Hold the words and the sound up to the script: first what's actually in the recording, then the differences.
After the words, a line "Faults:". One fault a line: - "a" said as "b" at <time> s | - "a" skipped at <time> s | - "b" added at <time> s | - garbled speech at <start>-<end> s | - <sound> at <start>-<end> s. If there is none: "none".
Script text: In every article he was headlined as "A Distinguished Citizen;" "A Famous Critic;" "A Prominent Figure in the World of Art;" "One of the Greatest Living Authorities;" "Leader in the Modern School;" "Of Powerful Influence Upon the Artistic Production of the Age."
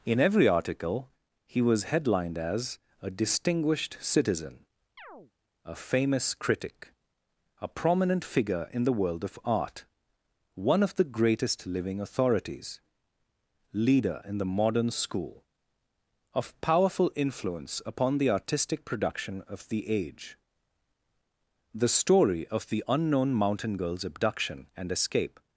In every article he was headlined as "A Distinguished Citizen;" "A Famous Critic;" "A Prominent Figure in the World of Art;" "One of the Greatest Living Authorities;" "Leader in the Modern School;" "Of Powerful Influence Upon the Artistic Production of the Age." The story of the unknown mountain girl's abduction and escape
Faults:
- chirp at 5.0-5.3 s
- "The story of the unknown mountain girl's abduction and escape" added at 21.7 s